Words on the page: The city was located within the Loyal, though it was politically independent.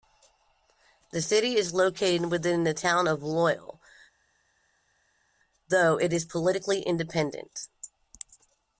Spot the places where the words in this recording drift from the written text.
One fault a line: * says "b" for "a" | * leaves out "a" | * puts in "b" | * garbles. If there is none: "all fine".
* says "is" for "was"
* puts in "Town of"
* says "is" for "was"